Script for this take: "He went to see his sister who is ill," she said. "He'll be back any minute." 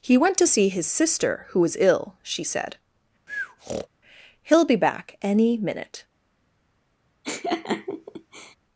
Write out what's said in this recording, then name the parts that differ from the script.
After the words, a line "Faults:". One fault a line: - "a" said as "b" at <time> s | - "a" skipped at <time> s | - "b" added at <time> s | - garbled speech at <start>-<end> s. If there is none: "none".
"He went to see his sister who was ill," she said. "He'll be back any minute."
Faults:
- "is" said as "was" at 1.6 s